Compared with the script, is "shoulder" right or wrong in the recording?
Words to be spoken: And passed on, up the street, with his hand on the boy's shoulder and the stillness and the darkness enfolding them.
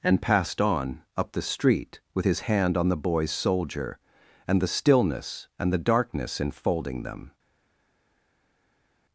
wrong